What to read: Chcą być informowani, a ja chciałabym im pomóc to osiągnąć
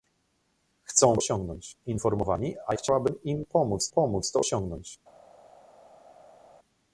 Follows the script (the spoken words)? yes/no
no